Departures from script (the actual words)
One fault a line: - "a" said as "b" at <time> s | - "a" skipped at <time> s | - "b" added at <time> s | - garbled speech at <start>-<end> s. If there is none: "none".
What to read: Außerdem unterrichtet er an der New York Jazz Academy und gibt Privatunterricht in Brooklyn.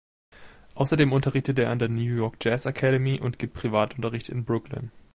none